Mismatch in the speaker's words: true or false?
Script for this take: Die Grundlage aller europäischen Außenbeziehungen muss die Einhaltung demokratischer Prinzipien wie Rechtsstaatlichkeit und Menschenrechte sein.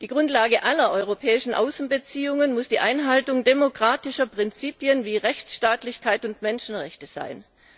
false